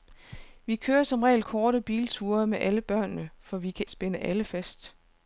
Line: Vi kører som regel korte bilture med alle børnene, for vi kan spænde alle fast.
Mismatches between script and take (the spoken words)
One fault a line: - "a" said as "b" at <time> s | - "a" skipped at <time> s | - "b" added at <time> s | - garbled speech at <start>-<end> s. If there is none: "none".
none